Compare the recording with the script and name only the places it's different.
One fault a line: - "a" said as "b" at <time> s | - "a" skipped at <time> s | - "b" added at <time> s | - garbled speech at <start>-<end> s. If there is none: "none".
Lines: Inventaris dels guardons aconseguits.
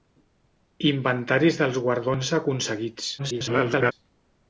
- garbled speech at 3.2-3.9 s